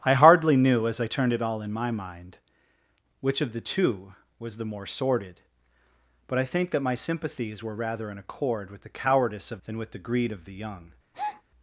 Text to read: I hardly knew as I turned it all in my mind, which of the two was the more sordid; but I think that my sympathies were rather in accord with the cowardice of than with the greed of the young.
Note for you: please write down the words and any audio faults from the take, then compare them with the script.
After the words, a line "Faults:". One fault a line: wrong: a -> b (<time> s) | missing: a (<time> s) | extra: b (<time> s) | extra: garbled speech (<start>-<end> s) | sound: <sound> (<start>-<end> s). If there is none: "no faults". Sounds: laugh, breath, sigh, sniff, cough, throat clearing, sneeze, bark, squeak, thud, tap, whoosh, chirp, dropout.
I hardly knew as I turned it all in my mind, which of the two was the more sordid; but I think that my sympathies were rather in accord with the cowardice of than with the greed of the young.
Faults:
sound: breath (11.1-11.4 s)